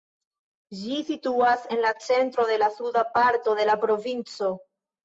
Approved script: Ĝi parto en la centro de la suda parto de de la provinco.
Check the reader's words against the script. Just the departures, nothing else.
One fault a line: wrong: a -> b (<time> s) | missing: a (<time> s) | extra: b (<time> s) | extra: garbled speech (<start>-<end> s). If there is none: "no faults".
wrong: parto -> situas (1.1 s)
missing: de (3.7 s)